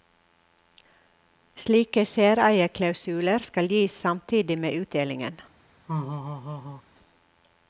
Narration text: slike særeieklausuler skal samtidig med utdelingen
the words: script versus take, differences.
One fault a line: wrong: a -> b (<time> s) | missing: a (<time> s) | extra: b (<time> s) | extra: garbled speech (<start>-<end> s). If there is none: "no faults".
extra: gis (3.7 s)